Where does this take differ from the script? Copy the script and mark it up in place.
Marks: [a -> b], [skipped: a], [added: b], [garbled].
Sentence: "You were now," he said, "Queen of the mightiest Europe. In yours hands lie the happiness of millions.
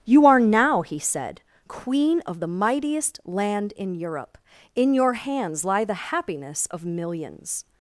"You [were -> are] now," he said, "Queen of the mightiest [added: land in] Europe. In [yours -> your] hands lie the happiness of millions.